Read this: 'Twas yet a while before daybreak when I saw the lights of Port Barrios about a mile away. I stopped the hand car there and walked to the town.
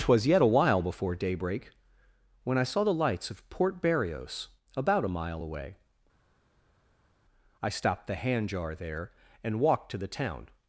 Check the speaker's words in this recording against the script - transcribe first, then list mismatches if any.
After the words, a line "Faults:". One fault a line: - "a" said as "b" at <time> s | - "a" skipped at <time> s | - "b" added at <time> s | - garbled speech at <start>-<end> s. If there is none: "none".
'Twas yet a while before daybreak when I saw the lights of Port Barrios about a mile away. I stopped the hand jar there and walked to the town.
Faults:
- "car" said as "jar" at 8.5 s